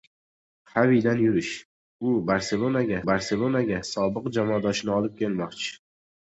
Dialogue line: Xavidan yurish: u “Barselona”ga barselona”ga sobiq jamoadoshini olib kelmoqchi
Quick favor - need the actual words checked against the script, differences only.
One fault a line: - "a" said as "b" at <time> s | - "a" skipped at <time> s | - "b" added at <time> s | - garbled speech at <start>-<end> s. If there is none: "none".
none